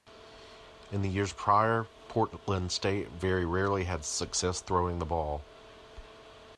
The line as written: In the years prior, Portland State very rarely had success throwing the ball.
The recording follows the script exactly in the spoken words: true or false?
true